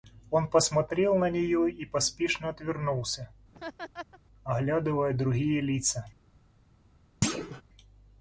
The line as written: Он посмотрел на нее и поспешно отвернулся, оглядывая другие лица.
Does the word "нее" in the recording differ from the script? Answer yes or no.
no